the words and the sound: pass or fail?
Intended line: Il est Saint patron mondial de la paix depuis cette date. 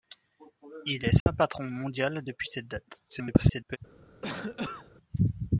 fail